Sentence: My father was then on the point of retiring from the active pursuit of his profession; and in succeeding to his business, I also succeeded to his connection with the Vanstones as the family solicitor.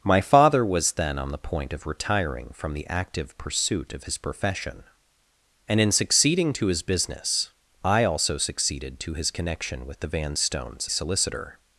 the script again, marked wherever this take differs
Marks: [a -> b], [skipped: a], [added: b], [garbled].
My father was then on the point of retiring from the active pursuit of his profession; and in succeeding to his business, I also succeeded to his connection with the Vanstones [skipped: as the family] solicitor.